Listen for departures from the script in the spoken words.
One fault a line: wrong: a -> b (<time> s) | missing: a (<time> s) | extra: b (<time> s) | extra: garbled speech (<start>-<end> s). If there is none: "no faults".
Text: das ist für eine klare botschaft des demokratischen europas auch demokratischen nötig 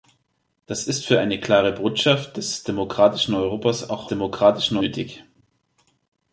no faults